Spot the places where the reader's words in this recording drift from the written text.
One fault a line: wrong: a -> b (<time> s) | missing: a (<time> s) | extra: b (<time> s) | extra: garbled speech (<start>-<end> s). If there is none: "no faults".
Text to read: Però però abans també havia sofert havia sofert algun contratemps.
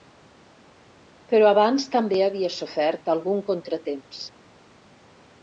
missing: però (1.5 s)
missing: havia sofert (3.1 s)